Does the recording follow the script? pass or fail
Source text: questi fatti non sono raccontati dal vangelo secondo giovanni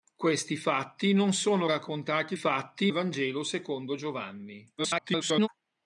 fail